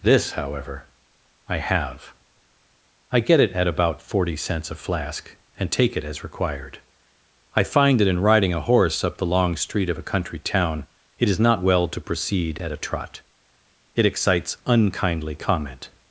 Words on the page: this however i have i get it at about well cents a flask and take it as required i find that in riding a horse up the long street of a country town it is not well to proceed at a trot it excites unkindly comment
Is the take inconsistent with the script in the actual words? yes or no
yes